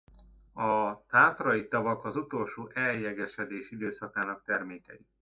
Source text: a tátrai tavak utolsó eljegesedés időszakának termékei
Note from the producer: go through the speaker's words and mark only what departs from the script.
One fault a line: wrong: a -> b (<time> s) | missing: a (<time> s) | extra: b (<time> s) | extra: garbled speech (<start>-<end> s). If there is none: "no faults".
extra: az (2.0 s)